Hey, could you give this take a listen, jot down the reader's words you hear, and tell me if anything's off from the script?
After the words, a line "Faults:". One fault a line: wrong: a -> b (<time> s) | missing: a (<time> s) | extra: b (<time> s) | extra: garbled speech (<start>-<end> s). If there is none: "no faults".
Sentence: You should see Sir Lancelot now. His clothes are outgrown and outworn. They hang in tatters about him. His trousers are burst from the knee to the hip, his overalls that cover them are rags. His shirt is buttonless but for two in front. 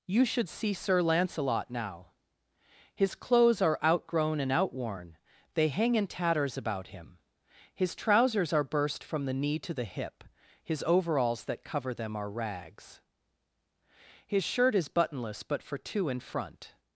You should see Sir Lancelot now. His clothes are outgrown and outworn. They hang in tatters about him. His trousers are burst from the knee to the hip, his overalls that cover them are rags. His shirt is buttonless but for two in front.
Faults:
no faults